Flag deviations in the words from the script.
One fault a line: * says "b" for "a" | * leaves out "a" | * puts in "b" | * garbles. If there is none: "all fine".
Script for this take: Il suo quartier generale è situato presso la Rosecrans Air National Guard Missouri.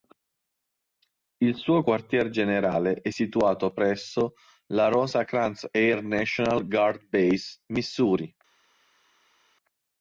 * puts in "Base"